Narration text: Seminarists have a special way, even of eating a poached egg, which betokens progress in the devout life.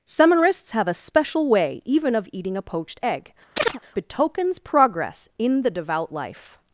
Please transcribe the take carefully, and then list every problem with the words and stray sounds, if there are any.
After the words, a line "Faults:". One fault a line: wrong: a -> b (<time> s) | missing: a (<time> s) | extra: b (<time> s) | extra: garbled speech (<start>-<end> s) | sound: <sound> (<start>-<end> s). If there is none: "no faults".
Seminarists have a special way, even of eating a poached egg, betokens progress in the devout life.
Faults:
missing: which (3.3 s)
sound: chirp (3.6-3.8 s)